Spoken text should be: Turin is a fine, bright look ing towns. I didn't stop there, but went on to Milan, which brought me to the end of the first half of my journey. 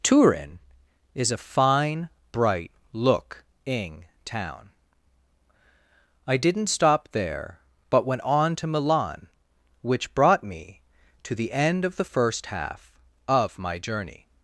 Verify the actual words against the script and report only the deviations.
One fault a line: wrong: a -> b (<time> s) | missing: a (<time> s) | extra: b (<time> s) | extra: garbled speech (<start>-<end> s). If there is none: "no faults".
wrong: towns -> town (4.2 s)